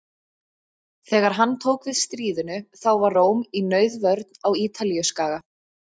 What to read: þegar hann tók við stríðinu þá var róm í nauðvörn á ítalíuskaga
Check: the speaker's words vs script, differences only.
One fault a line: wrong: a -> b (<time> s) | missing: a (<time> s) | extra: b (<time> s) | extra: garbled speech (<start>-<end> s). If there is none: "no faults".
no faults